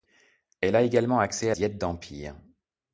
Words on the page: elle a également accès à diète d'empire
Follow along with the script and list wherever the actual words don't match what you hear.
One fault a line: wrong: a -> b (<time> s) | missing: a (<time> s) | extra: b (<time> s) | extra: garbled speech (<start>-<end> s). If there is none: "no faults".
no faults